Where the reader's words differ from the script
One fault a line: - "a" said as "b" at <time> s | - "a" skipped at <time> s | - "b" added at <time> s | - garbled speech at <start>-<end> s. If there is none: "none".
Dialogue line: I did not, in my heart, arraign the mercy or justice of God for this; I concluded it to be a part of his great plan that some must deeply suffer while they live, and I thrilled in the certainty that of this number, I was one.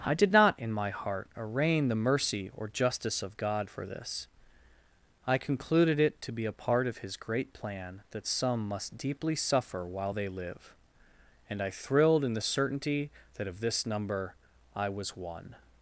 none